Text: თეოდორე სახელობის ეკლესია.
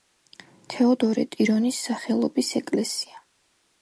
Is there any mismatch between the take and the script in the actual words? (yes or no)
yes